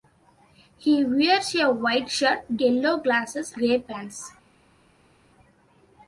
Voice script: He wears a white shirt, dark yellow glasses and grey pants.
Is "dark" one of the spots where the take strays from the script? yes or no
yes